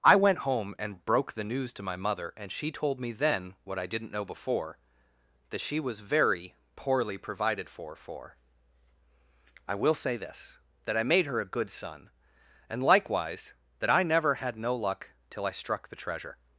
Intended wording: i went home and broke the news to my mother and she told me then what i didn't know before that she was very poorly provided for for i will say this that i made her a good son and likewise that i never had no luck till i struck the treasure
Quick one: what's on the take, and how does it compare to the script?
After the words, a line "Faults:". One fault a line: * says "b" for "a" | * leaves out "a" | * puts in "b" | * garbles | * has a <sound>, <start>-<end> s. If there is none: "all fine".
i went home and broke the news to my mother and she told me then what i didn't know before that she was very poorly provided for for i will say this that i made her a good son and likewise that i never had no luck till i struck the treasure
Faults:
all fine